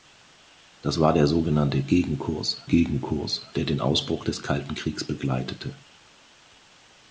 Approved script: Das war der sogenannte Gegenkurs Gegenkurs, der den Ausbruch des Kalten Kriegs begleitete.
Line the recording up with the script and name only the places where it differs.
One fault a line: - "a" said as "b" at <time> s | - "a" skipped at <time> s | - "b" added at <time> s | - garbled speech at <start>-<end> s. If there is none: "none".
none